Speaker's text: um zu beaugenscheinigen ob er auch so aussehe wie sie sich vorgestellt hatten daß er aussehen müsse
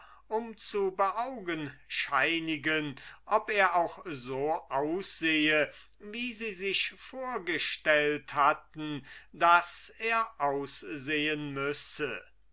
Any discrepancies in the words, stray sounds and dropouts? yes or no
no